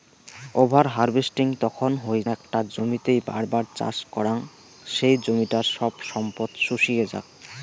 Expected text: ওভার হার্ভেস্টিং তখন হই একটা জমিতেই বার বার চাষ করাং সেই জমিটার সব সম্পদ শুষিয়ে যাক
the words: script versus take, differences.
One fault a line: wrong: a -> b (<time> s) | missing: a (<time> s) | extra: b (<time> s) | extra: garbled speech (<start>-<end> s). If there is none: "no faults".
no faults